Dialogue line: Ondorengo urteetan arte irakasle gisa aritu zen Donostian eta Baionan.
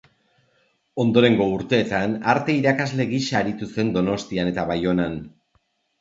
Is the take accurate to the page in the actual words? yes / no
yes